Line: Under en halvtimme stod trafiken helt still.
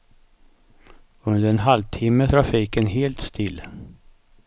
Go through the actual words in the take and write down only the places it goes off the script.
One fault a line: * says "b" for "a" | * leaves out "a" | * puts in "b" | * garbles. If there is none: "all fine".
* leaves out "stod"